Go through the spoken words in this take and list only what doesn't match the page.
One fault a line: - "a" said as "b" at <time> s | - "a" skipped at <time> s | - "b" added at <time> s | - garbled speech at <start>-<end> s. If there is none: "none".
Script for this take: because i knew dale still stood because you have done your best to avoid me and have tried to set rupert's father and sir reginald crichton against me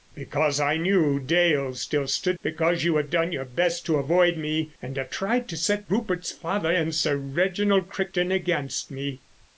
none